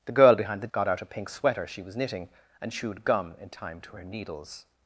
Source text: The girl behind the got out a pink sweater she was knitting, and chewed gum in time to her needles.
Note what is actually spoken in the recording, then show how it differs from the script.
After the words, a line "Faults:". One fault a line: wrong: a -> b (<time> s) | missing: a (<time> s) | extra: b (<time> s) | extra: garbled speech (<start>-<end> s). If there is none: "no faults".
The girl behind the got out a pink sweater she was knitting, and chewed gum in time to her needles.
Faults:
no faults